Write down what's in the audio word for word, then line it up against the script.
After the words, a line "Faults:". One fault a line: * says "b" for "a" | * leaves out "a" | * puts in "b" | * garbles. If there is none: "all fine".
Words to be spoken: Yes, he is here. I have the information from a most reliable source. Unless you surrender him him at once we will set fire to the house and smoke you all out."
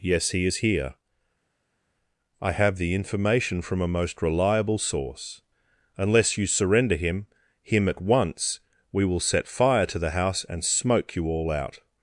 Yes, he is here. I have the information from a most reliable source. Unless you surrender him him at once we will set fire to the house and smoke you all out."
Faults:
all fine